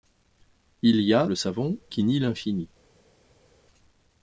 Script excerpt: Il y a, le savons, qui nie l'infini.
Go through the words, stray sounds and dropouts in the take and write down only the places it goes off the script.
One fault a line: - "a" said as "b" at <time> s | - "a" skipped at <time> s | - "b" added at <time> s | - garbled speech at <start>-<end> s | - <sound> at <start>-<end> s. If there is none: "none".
none